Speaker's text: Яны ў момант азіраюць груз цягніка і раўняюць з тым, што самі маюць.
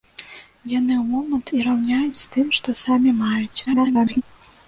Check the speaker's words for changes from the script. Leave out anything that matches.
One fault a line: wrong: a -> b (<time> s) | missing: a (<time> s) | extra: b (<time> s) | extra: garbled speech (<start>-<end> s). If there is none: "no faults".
missing: азіраюць груз цягніка (1.5 s)
extra: garbled speech (3.7-4.2 s)